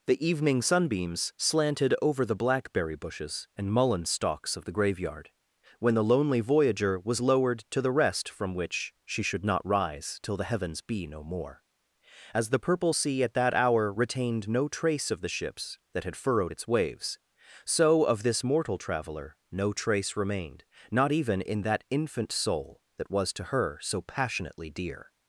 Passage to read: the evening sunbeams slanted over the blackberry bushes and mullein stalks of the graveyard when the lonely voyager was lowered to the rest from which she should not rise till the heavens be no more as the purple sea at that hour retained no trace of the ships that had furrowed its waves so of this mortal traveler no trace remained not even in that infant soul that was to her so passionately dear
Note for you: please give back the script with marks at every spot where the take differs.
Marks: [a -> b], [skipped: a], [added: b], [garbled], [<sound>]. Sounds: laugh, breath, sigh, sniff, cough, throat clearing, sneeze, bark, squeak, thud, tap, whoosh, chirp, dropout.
the evening sunbeams slanted over the blackberry bushes and mullein stalks of the graveyard when the lonely voyager was lowered to the rest from which she should not rise till the heavens be no more as the purple sea at that hour retained no trace of the ships that had furrowed its waves so of this mortal traveler no trace remained not even in that infant soul that was to her so passionately dear